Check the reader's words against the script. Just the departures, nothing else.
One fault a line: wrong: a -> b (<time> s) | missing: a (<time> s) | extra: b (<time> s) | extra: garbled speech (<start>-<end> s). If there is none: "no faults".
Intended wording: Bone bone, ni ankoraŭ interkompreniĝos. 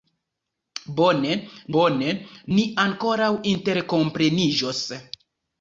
no faults